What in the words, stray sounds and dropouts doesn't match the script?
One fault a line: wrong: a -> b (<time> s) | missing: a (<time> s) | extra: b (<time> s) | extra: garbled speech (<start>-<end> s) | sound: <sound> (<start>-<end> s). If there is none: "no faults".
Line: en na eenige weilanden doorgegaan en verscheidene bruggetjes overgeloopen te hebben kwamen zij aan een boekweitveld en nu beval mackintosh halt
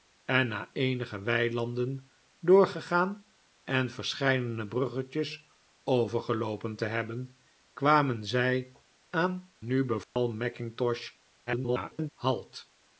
missing: een boekweitveld en (9.5 s)
sound: dropout (10.0-10.2 s)
extra: garbled speech (11.5-12.1 s)